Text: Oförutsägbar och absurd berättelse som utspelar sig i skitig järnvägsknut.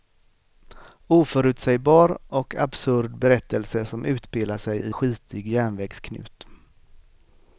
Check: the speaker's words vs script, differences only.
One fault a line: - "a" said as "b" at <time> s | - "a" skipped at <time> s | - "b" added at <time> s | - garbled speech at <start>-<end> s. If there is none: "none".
none